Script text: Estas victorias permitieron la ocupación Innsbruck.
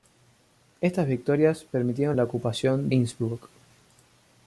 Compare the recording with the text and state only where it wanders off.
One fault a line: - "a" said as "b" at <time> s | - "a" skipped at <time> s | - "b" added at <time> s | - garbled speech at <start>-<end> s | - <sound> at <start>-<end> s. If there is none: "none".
none